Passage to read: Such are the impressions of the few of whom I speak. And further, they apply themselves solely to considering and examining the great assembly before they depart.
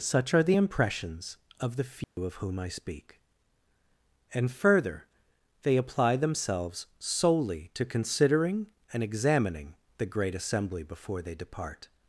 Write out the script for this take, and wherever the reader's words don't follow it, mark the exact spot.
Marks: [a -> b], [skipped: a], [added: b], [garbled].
Such are the impressions of the few of whom I speak. And further, they apply themselves solely to considering and examining the great assembly before they depart.